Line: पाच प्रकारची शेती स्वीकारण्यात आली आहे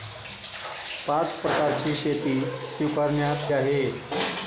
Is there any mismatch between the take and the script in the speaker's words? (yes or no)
yes